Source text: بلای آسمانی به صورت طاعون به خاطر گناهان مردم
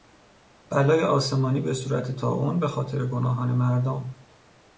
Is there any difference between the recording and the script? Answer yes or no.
no